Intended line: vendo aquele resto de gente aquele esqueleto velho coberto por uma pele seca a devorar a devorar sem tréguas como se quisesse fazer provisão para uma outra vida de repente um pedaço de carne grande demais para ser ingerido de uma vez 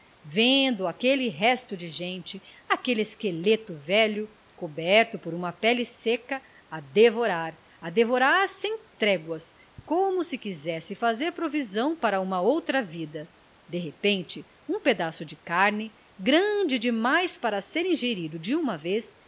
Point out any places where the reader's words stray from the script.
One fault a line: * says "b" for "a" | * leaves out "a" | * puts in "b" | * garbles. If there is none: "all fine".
all fine